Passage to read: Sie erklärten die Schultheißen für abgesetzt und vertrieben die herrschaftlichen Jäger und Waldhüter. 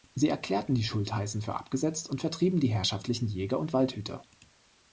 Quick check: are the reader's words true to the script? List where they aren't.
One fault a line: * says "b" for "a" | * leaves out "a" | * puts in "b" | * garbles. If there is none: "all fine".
all fine